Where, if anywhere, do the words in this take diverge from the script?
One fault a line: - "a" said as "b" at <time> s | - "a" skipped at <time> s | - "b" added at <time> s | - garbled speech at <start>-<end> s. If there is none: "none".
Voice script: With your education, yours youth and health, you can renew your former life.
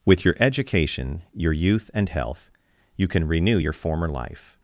- "yours" said as "your" at 1.3 s